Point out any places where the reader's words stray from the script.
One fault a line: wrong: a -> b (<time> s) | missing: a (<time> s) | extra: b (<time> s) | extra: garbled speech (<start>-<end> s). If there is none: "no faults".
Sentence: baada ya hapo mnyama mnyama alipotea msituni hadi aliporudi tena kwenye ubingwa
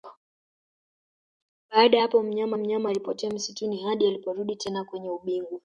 no faults